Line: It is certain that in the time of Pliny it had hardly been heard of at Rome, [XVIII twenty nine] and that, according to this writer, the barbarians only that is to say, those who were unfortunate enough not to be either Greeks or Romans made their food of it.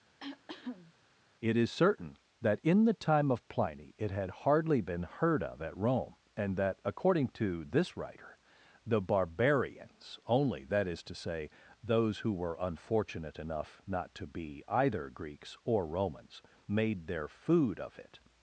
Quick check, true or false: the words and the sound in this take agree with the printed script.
false